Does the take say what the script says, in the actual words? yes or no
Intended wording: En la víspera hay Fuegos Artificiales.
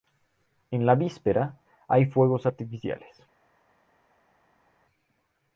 yes